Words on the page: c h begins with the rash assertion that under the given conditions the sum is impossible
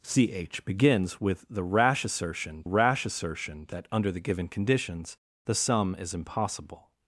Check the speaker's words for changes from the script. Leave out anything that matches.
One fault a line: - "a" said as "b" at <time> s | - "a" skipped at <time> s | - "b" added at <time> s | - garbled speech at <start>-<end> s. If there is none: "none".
- "rash assertion" added at 2.6 s